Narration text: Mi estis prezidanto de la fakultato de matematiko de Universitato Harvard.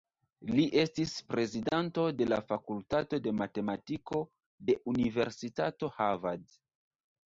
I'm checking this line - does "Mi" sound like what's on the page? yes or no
no